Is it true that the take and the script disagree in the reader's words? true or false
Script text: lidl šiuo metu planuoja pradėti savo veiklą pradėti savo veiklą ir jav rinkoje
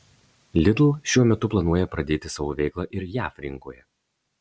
true